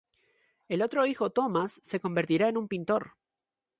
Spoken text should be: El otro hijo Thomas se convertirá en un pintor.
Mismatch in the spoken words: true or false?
false